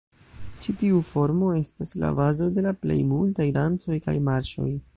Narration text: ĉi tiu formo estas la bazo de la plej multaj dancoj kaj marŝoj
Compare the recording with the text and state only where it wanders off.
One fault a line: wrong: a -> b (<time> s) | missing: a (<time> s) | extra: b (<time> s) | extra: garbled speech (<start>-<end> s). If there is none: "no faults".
no faults